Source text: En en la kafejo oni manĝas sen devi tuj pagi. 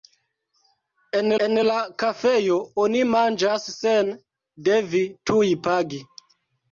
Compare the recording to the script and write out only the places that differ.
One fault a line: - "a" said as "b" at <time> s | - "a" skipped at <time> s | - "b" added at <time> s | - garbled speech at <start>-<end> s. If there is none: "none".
none